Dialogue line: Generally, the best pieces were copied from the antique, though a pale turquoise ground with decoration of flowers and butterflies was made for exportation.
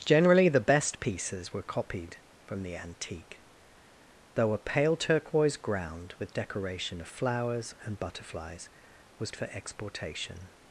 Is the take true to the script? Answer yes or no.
no